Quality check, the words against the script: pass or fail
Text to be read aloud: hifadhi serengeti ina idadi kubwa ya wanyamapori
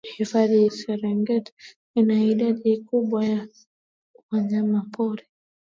pass